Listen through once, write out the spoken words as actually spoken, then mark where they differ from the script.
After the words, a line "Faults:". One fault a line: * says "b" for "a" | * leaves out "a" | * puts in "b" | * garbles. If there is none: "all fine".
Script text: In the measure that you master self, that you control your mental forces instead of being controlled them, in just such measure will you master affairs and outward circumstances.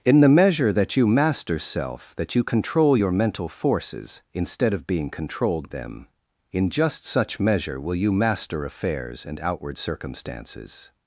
In the measure that you master self, that you control your mental forces instead of being controlled them, in just such measure will you master affairs and outward circumstances.
Faults:
all fine